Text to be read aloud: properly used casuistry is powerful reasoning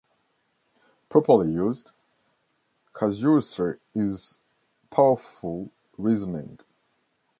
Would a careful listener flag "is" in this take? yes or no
no